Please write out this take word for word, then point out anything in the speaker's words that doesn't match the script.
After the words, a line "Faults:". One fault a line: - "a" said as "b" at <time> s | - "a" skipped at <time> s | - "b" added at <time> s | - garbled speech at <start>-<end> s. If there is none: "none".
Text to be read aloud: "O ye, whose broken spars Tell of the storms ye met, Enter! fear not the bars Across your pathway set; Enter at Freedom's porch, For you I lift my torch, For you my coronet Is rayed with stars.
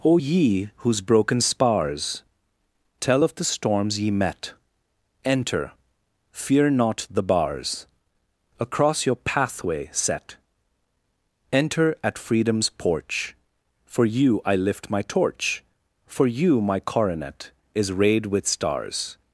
"O ye, whose broken spars Tell of the storms ye met, Enter! fear not the bars Across your pathway set; Enter at Freedom's porch, For you I lift my torch, For you my coronet Is rayed with stars.
Faults:
none